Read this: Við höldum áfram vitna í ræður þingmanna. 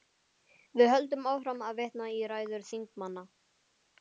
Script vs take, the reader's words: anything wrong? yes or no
yes